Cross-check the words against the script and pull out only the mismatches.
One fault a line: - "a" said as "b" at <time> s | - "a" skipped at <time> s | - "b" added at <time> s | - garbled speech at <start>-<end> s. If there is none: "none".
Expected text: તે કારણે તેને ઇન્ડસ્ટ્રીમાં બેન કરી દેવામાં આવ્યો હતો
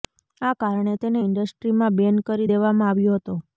- "તે" said as "આ" at 0.4 s